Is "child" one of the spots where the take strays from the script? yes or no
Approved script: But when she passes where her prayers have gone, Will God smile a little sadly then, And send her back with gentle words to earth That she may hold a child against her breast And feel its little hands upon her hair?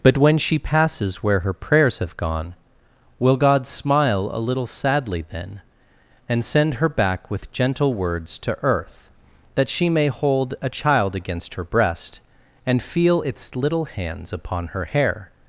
no